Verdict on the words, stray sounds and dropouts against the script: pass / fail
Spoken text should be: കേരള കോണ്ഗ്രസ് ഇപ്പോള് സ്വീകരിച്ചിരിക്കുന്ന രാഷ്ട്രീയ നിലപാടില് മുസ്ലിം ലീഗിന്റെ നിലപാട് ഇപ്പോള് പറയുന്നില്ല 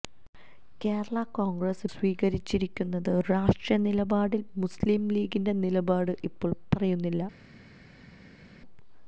fail